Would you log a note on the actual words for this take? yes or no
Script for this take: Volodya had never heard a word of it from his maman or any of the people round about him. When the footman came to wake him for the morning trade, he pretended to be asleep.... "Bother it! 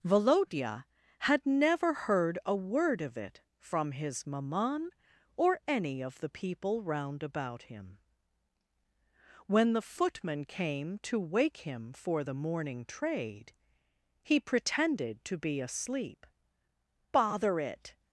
no